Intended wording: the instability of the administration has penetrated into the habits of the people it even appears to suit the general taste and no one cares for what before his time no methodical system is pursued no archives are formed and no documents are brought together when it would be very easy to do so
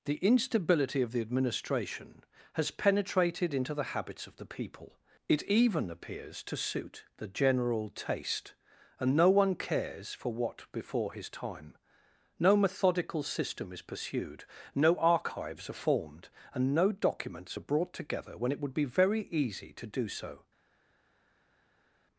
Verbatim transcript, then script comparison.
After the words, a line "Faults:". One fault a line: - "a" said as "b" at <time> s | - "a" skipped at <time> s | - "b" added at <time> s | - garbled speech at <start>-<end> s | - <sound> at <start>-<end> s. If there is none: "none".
the instability of the administration has penetrated into the habits of the people it even appears to suit the general taste and no one cares for what before his time no methodical system is pursued no archives are formed and no documents are brought together when it would be very easy to do so
Faults:
none